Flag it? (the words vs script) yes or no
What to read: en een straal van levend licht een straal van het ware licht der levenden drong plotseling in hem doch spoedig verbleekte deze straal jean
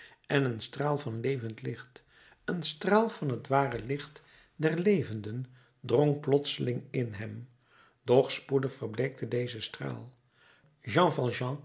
no